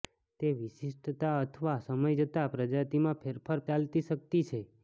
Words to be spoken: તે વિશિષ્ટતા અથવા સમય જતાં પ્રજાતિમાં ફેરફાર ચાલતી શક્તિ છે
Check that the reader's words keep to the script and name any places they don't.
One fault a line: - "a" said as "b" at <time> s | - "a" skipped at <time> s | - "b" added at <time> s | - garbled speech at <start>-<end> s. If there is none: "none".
none